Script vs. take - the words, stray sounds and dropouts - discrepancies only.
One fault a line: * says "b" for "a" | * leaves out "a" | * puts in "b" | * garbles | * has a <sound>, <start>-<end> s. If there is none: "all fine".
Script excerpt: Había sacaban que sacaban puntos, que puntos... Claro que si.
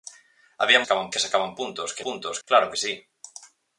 all fine